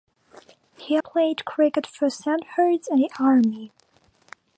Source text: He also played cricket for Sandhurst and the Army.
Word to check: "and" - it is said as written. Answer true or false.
true